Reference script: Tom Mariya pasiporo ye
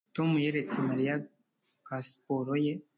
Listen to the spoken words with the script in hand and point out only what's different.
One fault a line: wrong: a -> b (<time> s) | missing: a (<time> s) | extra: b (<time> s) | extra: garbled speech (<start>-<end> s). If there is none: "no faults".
extra: yeretse (0.4 s)